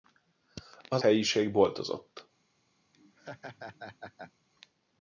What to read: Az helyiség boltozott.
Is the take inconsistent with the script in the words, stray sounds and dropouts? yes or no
yes